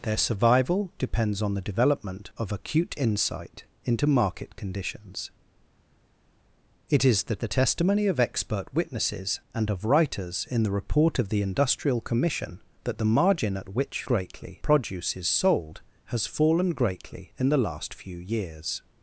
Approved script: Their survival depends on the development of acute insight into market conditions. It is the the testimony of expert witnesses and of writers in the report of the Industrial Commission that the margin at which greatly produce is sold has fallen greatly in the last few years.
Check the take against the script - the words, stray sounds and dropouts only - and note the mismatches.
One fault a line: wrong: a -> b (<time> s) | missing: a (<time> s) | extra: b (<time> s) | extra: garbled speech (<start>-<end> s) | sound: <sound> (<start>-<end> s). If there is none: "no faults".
no faults